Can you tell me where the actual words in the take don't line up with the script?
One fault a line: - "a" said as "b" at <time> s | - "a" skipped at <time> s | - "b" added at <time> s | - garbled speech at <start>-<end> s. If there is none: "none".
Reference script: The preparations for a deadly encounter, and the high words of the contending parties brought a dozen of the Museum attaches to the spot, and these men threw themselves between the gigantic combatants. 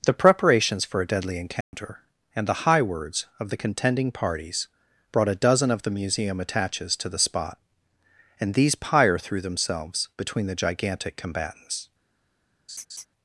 - "men" said as "pyre" at 8.7 s